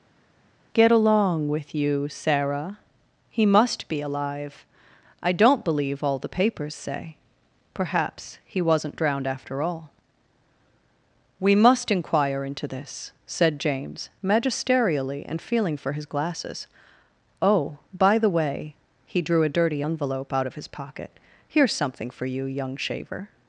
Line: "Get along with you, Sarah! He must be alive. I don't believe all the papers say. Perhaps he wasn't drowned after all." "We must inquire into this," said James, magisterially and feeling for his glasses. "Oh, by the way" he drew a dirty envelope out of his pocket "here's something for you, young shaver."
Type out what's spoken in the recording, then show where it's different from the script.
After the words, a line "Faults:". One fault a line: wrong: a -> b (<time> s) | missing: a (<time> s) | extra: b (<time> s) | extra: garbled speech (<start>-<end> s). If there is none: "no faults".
"Get along with you, Sarah! He must be alive. I don't believe all the papers say. Perhaps he wasn't drowned after all." "We must inquire into this," said James, magisterially and feeling for his glasses. "Oh, by the way" he drew a dirty envelope out of his pocket "here's something for you, young shaver."
Faults:
no faults